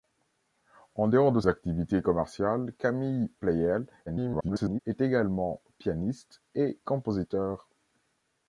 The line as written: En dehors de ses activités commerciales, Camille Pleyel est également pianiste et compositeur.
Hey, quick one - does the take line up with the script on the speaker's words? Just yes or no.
no